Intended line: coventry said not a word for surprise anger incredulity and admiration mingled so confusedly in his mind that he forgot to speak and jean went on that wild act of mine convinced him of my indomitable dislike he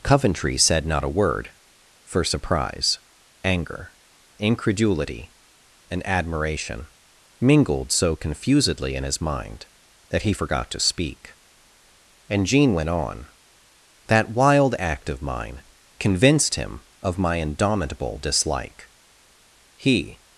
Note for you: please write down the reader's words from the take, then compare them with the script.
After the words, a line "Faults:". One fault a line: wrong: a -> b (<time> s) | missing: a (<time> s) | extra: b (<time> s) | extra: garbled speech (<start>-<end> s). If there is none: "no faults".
coventry said not a word for surprise anger incredulity and admiration mingled so confusedly in his mind that he forgot to speak and jean went on that wild act of mine convinced him of my indomitable dislike he
Faults:
no faults